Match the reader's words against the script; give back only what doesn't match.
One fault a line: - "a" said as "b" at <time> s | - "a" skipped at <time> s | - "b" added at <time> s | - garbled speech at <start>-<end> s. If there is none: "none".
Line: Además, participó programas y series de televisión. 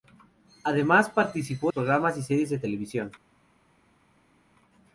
none